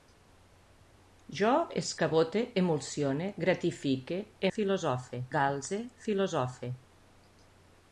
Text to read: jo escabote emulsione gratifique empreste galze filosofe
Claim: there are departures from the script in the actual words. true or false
true